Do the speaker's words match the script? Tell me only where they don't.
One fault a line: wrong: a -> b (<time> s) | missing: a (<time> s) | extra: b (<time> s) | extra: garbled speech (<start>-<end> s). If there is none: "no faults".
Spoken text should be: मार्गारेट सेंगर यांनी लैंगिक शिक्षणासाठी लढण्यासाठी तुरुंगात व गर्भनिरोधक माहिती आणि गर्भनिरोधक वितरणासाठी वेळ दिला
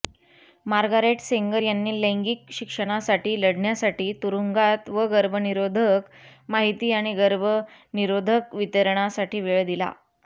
no faults